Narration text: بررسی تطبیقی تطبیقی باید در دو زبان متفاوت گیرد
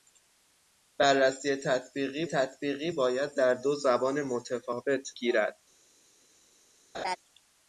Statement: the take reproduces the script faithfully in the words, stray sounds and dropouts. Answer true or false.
false